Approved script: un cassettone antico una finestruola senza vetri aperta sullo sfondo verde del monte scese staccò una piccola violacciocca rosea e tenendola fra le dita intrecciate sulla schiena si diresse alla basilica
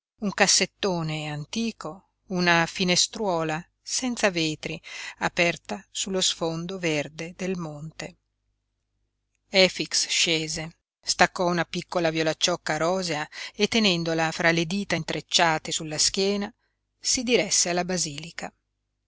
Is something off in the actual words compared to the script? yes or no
yes